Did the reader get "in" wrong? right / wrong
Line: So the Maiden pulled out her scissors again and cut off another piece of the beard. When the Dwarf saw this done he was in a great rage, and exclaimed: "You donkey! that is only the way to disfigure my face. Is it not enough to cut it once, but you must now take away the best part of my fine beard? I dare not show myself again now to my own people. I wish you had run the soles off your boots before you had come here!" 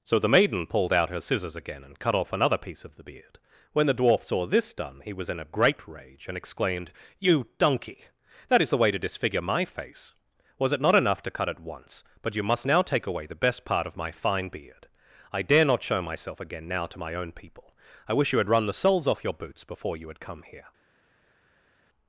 right